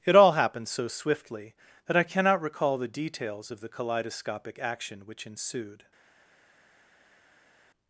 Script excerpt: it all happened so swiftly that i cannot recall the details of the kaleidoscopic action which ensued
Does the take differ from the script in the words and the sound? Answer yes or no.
no